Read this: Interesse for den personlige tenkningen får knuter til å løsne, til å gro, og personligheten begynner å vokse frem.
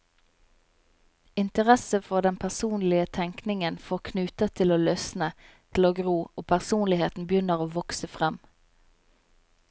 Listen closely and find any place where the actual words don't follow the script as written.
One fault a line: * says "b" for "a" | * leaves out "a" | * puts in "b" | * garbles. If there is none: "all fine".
all fine